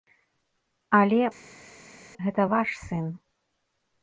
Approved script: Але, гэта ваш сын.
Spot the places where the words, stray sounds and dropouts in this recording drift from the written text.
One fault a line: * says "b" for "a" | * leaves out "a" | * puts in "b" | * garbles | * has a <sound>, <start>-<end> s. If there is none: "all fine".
all fine